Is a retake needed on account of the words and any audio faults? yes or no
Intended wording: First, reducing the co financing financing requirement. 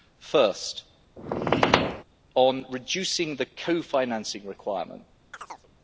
yes